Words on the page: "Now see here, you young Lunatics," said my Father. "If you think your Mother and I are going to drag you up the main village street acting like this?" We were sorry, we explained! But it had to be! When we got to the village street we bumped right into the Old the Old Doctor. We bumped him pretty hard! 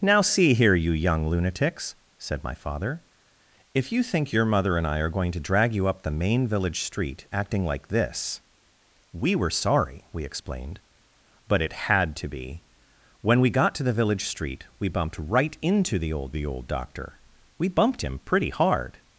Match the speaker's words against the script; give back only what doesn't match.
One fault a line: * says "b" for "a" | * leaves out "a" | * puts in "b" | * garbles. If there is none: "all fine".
all fine